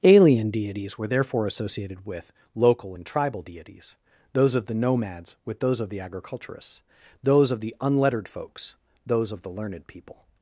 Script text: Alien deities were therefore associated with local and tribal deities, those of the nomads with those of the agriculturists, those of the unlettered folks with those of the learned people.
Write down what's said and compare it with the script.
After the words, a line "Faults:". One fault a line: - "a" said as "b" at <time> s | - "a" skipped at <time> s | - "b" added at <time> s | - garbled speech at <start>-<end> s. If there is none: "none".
Alien deities were therefore associated with local and tribal deities, those of the nomads with those of the agriculturists, those of the unlettered folks those of the learned people.
Faults:
- "with" skipped at 8.8 s